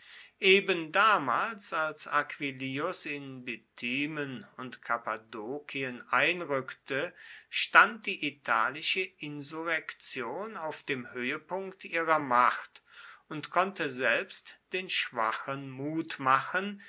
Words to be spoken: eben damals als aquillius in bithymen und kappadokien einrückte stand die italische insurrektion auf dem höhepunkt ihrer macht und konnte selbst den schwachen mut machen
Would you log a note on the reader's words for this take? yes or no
no